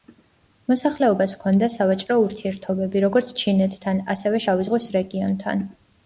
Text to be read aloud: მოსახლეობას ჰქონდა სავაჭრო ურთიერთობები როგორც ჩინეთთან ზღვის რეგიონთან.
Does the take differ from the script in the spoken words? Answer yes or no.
yes